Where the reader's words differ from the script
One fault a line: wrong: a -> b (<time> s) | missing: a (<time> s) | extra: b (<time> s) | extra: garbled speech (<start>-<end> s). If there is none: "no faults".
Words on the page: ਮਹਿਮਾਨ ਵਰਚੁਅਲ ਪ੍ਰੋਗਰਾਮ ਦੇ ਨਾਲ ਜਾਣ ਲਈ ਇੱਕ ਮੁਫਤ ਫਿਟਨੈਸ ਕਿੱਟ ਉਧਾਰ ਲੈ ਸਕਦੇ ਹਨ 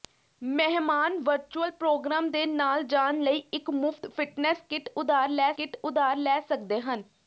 extra: ਕਿੱਟ ਉਧਾਰ ਲੈ (5.6 s)